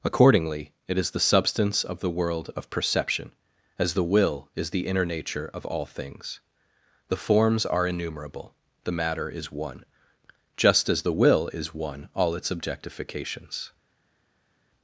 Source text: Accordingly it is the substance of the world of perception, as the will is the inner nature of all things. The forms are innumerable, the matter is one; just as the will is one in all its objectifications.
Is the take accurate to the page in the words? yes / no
no